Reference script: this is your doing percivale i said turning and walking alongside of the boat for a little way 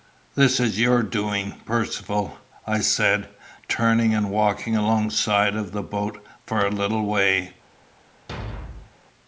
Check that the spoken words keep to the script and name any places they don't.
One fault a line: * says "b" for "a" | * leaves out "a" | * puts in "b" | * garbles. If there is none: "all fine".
all fine